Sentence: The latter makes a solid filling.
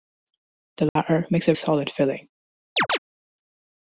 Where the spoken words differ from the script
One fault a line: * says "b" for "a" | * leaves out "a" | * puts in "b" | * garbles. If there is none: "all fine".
all fine